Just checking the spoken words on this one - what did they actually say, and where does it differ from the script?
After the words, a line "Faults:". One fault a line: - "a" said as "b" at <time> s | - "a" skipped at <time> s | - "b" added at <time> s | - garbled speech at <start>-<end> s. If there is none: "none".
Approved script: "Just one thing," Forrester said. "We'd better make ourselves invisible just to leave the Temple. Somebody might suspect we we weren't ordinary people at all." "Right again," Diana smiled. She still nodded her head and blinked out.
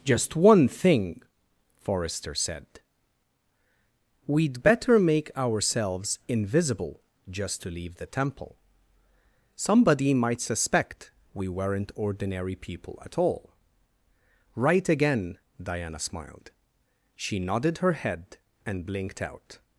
"Just one thing," Forrester said. "We'd better make ourselves invisible just to leave the Temple. Somebody might suspect we weren't ordinary people at all." "Right again," Diana smiled. She nodded her head and blinked out.
Faults:
- "we" skipped at 11.5 s
- "still" skipped at 17.4 s